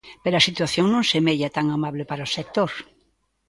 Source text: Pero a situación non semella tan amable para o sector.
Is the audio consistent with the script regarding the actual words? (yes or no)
yes